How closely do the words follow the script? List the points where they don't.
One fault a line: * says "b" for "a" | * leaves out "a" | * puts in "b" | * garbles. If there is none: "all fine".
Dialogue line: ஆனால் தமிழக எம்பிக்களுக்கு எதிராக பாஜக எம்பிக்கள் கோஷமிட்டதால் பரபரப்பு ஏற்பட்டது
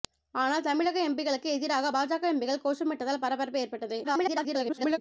* garbles